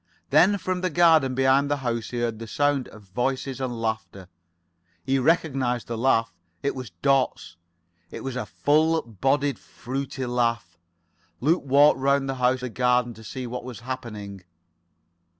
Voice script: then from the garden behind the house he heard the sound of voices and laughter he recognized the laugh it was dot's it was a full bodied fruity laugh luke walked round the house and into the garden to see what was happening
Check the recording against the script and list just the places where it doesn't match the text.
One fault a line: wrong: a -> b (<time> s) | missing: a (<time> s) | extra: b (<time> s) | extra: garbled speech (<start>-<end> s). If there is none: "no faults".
missing: and into (12.6 s)